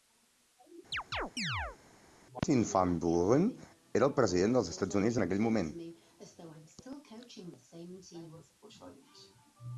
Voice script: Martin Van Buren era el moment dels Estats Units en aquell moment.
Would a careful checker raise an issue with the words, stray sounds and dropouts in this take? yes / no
yes